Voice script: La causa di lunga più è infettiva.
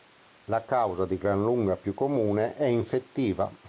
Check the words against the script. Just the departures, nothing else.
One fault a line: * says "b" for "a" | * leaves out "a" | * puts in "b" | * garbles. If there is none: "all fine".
* puts in "gran"
* puts in "comune"